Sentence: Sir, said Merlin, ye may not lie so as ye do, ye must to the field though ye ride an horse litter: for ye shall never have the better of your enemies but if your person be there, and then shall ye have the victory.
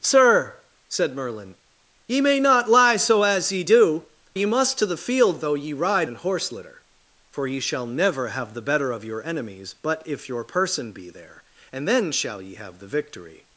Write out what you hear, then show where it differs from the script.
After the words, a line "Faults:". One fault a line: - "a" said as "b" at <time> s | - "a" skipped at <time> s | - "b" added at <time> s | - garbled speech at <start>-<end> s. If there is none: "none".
Sir, said Merlin, ye may not lie so as ye do, ye must to the field though ye ride an horse litter: for ye shall never have the better of your enemies but if your person be there, and then shall ye have the victory.
Faults:
none